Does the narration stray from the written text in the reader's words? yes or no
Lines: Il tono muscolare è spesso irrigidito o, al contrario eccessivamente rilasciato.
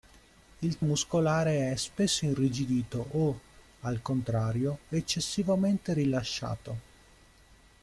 yes